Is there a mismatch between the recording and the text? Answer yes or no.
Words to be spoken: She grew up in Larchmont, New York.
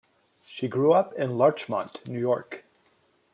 no